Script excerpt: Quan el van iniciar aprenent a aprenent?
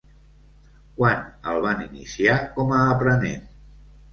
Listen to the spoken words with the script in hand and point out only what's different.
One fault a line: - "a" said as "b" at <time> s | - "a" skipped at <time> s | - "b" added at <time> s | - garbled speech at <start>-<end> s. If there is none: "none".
- "aprenent" said as "com" at 2.6 s